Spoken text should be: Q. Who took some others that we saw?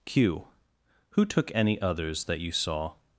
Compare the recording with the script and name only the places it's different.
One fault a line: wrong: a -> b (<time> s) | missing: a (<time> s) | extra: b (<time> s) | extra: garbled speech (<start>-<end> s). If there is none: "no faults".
wrong: some -> any (1.5 s)
wrong: we -> you (2.4 s)